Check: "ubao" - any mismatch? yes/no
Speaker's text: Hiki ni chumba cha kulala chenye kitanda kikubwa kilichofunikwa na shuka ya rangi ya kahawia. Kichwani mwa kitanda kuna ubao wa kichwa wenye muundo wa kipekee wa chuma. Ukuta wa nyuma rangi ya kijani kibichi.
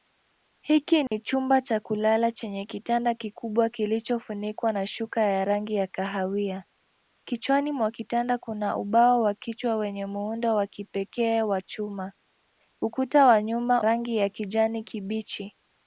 no